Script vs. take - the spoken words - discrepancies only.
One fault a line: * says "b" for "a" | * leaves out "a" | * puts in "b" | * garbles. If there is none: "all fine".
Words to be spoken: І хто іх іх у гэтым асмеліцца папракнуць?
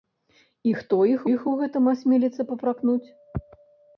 all fine